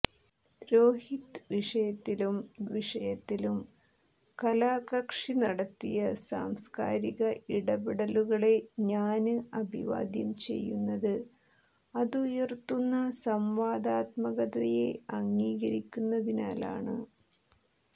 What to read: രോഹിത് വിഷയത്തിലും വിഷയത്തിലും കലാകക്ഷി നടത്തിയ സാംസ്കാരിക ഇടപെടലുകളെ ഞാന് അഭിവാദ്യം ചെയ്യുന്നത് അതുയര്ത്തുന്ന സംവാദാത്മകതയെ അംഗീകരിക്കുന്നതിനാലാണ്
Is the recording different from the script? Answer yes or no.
no